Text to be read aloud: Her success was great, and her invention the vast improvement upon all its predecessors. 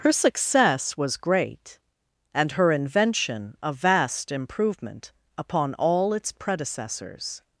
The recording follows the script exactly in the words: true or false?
false